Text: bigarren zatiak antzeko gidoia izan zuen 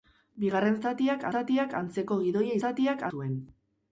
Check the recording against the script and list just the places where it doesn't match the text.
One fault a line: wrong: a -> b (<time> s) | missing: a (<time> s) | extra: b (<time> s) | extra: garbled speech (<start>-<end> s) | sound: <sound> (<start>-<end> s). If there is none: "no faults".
extra: zatiak (1.3 s)
wrong: izan -> zatiak (2.6 s)